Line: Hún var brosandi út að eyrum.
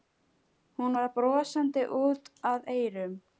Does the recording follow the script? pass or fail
pass